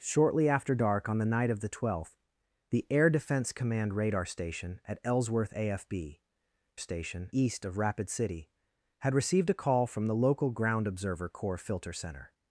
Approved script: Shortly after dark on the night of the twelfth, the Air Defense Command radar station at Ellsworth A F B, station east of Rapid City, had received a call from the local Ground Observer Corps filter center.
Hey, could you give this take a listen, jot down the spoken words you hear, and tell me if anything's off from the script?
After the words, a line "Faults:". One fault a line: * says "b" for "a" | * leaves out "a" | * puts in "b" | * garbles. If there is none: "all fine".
Shortly after dark on the night of the twelfth, the Air Defense Command radar station at Ellsworth A F B, station east of Rapid City, had received a call from the local Ground Observer Corps filter center.
Faults:
all fine